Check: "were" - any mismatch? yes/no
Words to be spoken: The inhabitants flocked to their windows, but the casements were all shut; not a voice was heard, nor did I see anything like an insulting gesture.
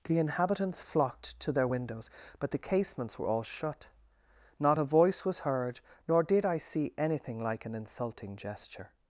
no